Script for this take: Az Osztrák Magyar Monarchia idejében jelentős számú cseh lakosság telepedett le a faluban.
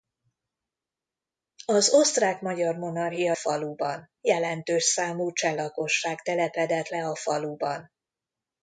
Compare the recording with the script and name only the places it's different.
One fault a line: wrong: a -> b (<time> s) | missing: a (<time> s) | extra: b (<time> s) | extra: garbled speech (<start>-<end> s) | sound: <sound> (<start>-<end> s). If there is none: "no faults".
wrong: idejében -> faluban (3.3 s)